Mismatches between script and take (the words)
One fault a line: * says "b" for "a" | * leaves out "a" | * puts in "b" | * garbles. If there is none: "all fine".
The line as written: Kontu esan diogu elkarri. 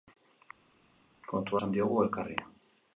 all fine